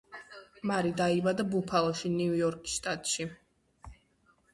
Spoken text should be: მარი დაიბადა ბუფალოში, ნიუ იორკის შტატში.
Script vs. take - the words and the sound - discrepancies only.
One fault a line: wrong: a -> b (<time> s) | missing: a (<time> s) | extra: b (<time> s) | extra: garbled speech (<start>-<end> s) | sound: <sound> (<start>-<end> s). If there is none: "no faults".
no faults